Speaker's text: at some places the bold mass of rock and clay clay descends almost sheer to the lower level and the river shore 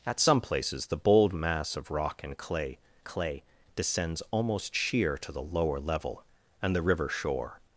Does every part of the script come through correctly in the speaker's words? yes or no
yes